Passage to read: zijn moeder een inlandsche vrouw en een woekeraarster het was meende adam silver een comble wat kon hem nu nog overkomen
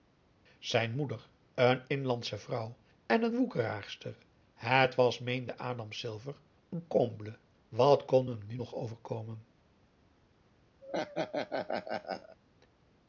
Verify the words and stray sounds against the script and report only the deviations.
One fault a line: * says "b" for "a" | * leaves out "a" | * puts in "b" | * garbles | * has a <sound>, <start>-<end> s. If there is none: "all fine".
* has a laugh, 10.8-12.4 s